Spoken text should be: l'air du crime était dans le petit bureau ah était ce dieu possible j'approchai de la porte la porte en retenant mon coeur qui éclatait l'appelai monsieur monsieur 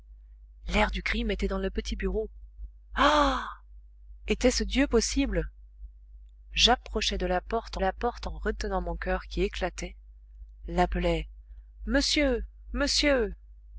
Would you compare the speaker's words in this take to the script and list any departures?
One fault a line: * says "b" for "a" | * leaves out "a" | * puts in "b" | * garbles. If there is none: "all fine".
all fine